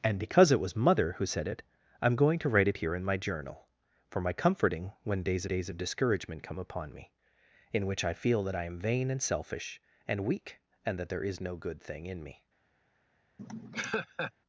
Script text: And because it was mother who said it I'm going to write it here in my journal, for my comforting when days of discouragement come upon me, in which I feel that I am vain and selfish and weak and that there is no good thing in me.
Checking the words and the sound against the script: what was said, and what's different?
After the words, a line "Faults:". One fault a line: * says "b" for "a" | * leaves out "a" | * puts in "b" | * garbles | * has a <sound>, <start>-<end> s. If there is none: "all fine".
And because it was mother who said it I'm going to write it here in my journal, for my comforting when days days of discouragement come upon me, in which I feel that I am vain and selfish and weak and that there is no good thing in me.
Faults:
* puts in "days"
* has a laugh, 13.4-14.3 s